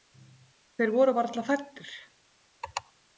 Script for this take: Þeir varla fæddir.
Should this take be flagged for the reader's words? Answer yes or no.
yes